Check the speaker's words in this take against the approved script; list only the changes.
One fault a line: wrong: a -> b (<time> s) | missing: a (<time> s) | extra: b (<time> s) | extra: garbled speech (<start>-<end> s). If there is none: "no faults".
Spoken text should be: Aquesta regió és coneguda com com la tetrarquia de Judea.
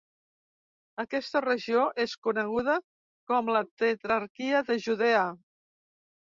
missing: com (3.5 s)